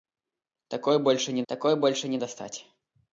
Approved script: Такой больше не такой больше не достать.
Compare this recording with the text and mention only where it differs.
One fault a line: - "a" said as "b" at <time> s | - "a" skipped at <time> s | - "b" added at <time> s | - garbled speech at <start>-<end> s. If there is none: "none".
none